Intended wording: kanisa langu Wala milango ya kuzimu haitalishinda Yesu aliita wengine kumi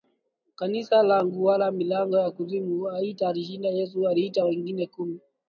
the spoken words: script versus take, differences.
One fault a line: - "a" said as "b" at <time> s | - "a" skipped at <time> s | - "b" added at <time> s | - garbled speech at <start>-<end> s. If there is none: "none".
none